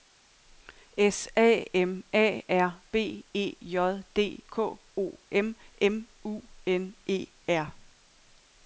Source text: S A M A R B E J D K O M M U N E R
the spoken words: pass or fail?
pass